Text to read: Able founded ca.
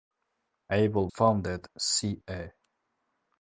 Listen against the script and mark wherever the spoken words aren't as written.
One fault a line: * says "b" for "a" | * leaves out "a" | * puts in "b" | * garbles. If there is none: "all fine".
all fine